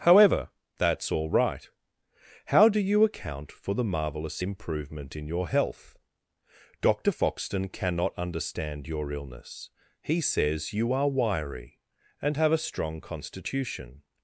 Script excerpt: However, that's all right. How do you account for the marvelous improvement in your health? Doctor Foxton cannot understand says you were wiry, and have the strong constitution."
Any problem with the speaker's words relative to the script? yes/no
yes